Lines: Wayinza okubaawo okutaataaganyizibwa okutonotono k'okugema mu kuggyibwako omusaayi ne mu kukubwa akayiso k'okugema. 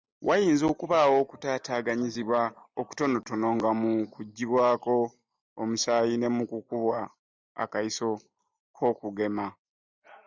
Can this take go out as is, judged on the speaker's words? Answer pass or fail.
fail